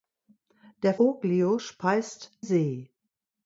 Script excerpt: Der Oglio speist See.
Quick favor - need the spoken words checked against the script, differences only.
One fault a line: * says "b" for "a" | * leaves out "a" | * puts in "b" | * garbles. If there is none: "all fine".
all fine